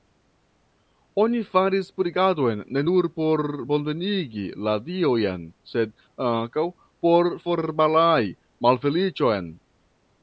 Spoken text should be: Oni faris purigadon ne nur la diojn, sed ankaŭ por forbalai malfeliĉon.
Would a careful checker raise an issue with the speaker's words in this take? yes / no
yes